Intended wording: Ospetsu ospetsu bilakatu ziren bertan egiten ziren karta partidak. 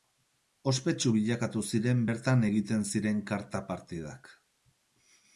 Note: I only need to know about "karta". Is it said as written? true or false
true